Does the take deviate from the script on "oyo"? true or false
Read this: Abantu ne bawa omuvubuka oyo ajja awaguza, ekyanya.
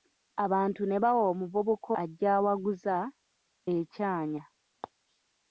true